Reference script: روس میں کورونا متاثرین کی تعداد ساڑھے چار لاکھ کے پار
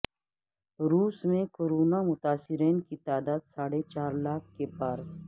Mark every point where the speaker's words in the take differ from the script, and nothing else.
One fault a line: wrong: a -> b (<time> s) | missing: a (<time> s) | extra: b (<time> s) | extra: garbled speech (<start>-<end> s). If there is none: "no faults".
no faults